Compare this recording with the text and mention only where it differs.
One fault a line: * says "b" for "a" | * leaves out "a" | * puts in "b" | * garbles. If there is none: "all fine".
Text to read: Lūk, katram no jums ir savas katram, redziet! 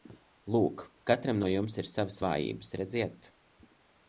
* says "vājības" for "katram"